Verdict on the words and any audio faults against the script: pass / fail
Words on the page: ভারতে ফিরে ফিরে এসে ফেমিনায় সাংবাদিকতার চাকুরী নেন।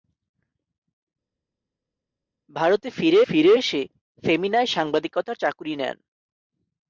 pass